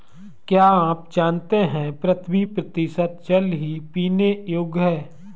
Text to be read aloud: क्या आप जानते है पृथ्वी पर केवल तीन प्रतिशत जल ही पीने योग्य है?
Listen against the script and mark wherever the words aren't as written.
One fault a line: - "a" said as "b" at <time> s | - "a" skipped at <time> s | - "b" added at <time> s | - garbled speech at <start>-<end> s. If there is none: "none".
- "पर केवल तीन" skipped at 2.4 s